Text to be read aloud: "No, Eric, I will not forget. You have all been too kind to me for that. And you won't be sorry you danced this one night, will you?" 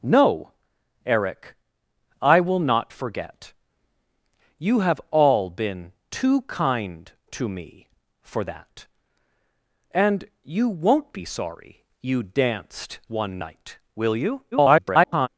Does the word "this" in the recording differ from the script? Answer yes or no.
yes